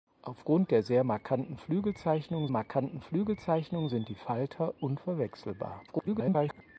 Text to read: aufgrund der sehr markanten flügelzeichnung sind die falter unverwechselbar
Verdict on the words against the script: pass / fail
fail